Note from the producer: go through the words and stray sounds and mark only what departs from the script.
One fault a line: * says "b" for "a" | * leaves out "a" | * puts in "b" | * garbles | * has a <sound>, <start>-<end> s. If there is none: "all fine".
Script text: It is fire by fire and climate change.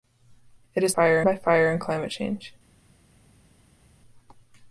all fine